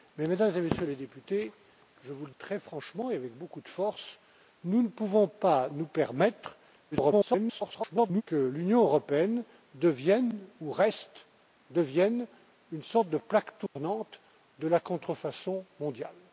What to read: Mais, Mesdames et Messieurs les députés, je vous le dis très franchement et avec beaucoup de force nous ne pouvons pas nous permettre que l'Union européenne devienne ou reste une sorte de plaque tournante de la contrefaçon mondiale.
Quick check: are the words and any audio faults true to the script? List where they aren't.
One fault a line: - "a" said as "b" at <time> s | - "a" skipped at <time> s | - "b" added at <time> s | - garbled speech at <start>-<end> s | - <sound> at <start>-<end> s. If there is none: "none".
- "dis" skipped at 2.3 s
- garbled speech at 6.9-8.2 s
- dropout at 13.7-13.8 s